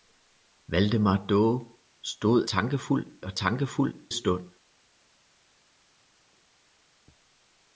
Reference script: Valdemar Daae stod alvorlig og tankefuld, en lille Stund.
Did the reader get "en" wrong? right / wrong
wrong